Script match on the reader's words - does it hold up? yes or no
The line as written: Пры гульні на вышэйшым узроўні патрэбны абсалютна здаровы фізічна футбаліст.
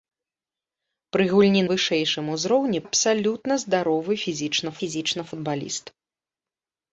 no